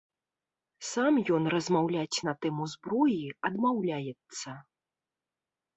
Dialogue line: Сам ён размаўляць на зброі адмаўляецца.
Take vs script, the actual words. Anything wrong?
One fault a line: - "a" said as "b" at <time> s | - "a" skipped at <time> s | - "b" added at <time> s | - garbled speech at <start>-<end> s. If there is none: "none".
- "тэму" added at 2.5 s